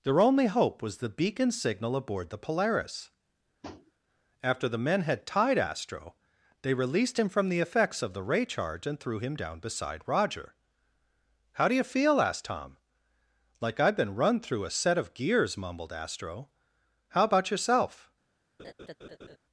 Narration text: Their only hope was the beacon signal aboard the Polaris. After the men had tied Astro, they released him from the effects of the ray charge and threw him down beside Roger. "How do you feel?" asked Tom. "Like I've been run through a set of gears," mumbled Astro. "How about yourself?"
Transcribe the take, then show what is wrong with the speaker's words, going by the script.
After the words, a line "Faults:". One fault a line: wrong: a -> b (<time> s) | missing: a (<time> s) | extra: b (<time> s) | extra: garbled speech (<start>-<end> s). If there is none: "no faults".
Their only hope was the beacon signal aboard the Polaris. After the men had tied Astro, they released him from the effects of the ray charge and threw him down beside Roger. "How do you feel?" asked Tom. "Like I've been run through a set of gears," mumbled Astro. "How about yourself?"
Faults:
no faults